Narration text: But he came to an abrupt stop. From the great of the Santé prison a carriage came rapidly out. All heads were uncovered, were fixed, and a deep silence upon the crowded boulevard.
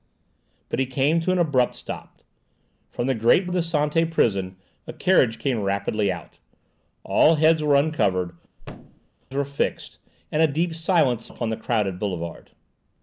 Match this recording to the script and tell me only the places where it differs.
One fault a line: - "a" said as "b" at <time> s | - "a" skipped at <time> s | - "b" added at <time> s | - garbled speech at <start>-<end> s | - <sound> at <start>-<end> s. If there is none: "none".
- thud at 8.6-9.1 s